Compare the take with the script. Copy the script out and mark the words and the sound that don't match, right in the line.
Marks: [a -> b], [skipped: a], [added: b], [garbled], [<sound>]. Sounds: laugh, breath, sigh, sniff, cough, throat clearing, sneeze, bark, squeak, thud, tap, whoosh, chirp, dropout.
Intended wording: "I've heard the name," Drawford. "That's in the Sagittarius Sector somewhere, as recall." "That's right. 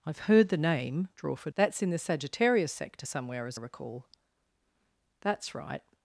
"I've heard the name," Drawford. "That's in the Sagittarius Sector somewhere, as recall." "That's right.